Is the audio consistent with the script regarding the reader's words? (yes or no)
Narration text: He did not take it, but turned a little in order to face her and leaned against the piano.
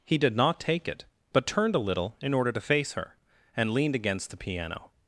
yes